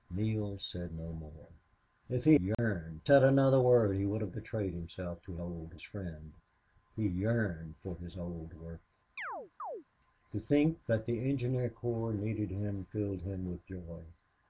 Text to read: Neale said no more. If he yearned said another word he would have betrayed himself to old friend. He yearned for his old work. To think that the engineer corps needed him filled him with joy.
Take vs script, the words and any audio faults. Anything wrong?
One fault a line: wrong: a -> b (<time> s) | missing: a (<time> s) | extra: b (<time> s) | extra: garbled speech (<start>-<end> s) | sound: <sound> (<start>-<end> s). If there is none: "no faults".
sound: dropout (2.5-2.6 s)
sound: chirp (9.2-9.8 s)